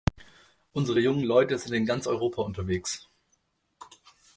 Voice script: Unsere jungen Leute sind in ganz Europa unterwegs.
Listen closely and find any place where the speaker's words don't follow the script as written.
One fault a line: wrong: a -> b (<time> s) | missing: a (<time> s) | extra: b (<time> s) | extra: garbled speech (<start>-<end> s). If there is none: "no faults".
no faults